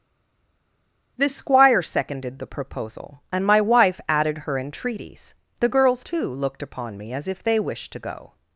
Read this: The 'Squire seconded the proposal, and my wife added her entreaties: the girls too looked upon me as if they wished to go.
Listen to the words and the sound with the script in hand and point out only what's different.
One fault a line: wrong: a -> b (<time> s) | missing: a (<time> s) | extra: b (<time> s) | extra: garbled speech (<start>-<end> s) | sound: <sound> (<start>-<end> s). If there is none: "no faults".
no faults